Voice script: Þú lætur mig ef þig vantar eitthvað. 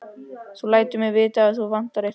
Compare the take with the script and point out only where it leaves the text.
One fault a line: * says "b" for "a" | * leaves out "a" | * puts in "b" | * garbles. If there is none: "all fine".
* puts in "vita"